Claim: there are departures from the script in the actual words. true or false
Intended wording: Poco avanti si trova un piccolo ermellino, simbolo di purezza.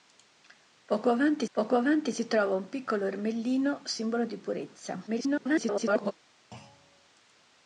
true